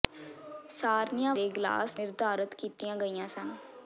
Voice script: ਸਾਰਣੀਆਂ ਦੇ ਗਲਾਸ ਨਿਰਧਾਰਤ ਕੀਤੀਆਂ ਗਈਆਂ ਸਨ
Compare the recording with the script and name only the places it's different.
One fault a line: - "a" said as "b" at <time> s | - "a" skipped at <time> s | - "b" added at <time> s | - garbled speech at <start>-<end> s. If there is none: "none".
none